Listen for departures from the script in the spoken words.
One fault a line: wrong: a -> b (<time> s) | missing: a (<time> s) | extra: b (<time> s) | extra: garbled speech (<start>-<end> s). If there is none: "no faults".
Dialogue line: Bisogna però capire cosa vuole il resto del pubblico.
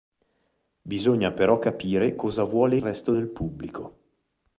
missing: il (2.8 s)